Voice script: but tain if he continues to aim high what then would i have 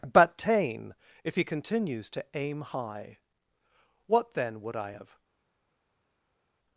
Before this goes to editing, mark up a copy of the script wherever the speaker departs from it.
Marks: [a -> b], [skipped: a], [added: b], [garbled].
but tain if he continues to aim high what then would i have